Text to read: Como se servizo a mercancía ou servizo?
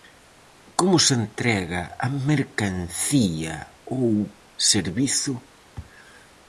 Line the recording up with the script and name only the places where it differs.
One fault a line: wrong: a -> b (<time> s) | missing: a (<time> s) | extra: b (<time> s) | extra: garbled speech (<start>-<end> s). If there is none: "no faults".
wrong: servizo -> entrega (1.2 s)